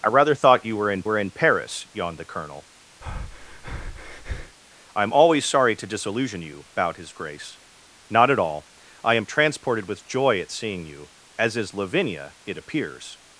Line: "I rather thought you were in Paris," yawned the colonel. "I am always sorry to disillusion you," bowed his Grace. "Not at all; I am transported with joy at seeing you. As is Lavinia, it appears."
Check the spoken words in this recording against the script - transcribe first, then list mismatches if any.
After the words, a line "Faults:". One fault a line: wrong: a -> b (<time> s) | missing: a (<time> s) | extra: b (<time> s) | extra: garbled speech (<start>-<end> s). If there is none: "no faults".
"I rather thought you were in were in Paris," yawned the colonel. "I am always sorry to disillusion you," bowed his Grace. "Not at all; I am transported with joy at seeing you. As is Lavinia, it appears."
Faults:
extra: were in (1.1 s)